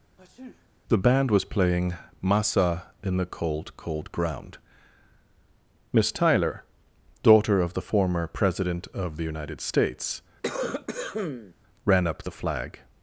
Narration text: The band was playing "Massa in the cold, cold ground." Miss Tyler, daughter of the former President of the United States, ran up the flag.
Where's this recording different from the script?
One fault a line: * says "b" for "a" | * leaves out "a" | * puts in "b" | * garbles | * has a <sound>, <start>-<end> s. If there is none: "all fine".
* has a sneeze, 0.2-0.7 s
* has a cough, 10.4-11.5 s